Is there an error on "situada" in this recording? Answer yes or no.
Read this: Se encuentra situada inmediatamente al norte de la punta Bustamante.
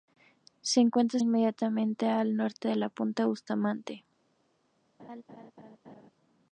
yes